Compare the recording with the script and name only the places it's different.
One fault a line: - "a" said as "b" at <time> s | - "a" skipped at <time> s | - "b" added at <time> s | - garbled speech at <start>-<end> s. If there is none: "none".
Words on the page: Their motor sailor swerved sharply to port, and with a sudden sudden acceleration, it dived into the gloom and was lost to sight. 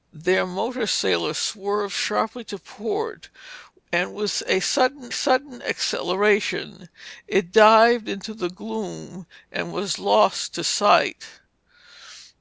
none